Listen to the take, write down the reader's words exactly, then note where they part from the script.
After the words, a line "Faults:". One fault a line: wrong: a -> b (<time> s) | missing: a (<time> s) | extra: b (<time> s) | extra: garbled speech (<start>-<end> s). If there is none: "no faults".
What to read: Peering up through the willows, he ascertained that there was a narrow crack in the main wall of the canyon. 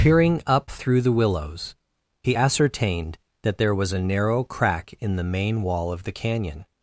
Peering up through the willows, he ascertained that there was a narrow crack in the main wall of the canyon.
Faults:
no faults